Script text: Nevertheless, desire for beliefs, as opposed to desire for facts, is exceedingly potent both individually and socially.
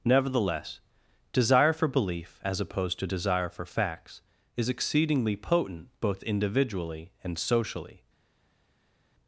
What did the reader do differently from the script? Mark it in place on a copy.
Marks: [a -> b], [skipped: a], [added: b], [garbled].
Nevertheless, desire for [beliefs, -> belief] as opposed to desire for facts, is exceedingly potent both individually and socially.